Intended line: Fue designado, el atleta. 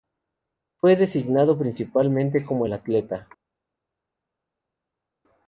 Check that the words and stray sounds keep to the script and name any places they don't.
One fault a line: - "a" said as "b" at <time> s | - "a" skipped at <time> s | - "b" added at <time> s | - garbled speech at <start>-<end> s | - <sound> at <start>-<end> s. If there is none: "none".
- "principalmente como" added at 1.6 s